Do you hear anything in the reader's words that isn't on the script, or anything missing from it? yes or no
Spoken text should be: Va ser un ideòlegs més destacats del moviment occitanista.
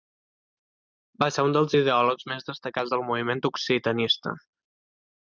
yes